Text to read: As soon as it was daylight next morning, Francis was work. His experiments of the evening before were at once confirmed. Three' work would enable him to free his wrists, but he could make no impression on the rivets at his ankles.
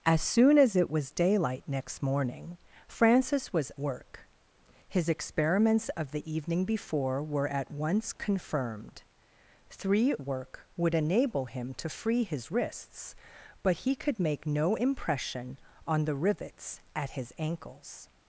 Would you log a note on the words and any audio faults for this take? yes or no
no